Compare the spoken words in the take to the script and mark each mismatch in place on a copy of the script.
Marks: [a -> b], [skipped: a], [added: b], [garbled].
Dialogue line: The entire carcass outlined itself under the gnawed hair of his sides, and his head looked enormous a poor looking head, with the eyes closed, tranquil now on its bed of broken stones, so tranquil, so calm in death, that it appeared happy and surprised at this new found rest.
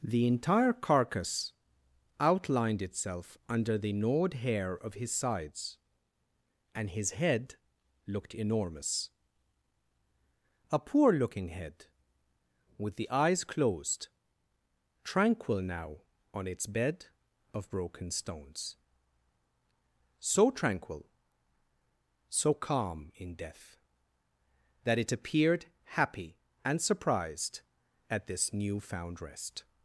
The entire carcass outlined itself under the gnawed hair of his sides, and his head looked enormous a poor looking head, with the eyes closed, tranquil now on its bed of broken stones, so tranquil, so calm in death, that it appeared happy and surprised at this new found rest.